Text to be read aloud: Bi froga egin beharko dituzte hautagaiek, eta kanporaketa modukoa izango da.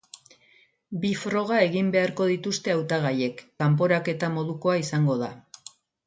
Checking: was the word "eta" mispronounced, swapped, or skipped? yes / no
yes